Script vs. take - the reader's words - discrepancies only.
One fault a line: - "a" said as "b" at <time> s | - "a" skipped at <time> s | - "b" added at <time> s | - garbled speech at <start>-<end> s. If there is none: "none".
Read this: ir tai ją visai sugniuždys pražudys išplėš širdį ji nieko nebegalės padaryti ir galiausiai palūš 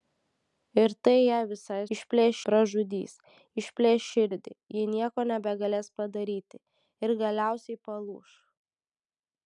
- "sugniuždys" said as "išplėš" at 2.0 s